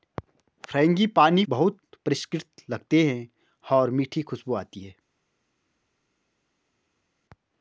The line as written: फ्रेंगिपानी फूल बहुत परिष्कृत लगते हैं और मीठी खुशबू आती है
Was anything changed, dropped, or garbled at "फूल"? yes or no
yes